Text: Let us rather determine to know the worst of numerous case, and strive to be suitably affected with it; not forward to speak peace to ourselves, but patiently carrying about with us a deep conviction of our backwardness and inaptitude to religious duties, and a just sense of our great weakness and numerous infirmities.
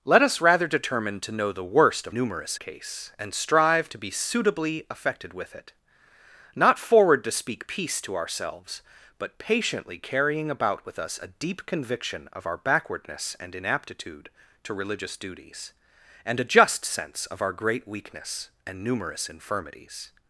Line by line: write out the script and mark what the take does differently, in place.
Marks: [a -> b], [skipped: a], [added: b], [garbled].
Let us rather determine to know the worst of numerous case, and strive to be suitably affected with it; not forward to speak peace to ourselves, but patiently carrying about with us a deep conviction of our backwardness and inaptitude to religious duties, and a just sense of our great weakness and numerous infirmities.